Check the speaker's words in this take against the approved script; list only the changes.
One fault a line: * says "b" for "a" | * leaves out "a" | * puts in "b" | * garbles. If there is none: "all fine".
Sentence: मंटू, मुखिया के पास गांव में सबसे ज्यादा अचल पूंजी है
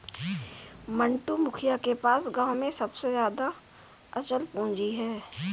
all fine